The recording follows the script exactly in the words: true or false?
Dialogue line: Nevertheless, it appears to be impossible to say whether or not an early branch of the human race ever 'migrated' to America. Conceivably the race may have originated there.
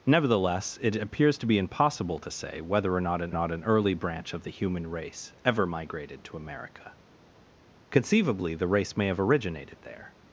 false